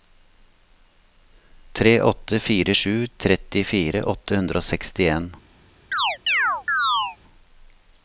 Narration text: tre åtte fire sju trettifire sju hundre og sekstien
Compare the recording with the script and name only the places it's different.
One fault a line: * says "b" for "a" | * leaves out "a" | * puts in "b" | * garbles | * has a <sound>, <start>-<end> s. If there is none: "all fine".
* says "åtte" for "sju"
* has a chirp, 5.9-7.2 s